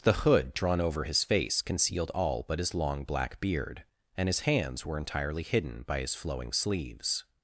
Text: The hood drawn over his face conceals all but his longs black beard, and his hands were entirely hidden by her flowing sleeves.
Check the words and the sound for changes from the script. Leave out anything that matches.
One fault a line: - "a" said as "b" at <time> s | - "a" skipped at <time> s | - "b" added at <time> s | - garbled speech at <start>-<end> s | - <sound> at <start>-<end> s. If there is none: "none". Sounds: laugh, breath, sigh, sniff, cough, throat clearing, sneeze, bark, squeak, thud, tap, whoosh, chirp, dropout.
- "conceals" said as "concealed" at 1.6 s
- "longs" said as "long" at 2.7 s
- "her" said as "his" at 6.0 s